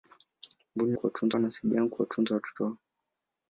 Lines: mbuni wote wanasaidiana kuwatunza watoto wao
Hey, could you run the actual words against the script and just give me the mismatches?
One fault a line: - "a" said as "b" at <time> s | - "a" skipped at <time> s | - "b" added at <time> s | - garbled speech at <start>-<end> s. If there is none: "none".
- "wote" said as "kuwatunza" at 0.9 s